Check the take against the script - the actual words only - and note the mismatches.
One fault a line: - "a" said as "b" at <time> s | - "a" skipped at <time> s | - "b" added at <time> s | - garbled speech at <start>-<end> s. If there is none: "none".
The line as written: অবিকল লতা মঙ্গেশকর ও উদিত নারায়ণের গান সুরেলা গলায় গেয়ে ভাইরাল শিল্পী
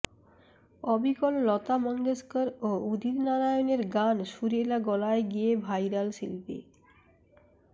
none